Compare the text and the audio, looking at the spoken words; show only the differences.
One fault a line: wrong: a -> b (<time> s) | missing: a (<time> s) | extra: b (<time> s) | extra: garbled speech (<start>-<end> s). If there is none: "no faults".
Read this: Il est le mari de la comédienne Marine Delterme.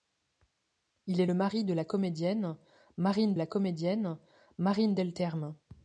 extra: la comédienne Marine (3.3 s)